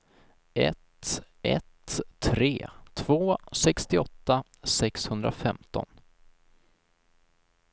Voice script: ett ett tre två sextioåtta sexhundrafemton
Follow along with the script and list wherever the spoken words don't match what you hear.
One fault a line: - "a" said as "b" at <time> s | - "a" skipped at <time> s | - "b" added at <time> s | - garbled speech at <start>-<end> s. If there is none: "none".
none